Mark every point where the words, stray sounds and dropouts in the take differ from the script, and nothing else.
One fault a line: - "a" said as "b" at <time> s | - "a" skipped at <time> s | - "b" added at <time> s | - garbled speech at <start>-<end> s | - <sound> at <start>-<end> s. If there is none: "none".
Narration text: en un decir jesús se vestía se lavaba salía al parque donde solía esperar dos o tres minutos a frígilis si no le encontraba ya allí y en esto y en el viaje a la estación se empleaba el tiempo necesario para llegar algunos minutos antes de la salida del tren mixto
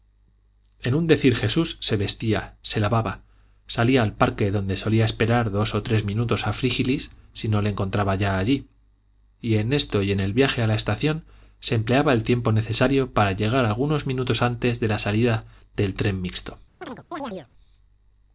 - chirp at 16.8-17.5 s